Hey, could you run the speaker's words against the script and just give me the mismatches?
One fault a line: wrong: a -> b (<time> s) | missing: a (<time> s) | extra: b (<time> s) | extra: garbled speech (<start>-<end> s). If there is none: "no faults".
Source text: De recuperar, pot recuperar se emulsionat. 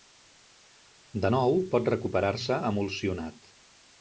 wrong: recuperar -> nou (1.3 s)